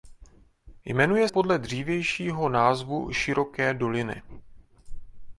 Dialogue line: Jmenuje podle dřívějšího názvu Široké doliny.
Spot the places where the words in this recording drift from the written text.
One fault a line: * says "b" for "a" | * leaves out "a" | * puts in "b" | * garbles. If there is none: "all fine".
all fine